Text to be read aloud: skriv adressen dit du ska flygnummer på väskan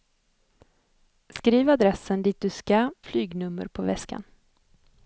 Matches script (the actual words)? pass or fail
pass